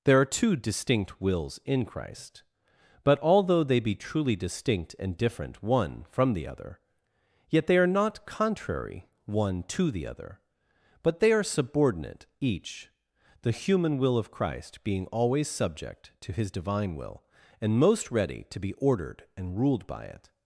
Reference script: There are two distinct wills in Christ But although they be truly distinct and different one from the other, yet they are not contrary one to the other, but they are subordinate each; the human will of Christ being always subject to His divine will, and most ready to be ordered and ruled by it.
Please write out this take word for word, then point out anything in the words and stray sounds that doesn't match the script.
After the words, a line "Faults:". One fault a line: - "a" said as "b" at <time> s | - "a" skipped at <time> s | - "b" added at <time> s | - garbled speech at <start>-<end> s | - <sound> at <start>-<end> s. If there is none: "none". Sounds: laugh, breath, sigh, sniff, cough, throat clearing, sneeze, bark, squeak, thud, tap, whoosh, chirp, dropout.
There are two distinct wills in Christ But although they be truly distinct and different one from the other, yet they are not contrary one to the other, but they are subordinate each; the human will of Christ being always subject to His divine will, and most ready to be ordered and ruled by it.
Faults:
none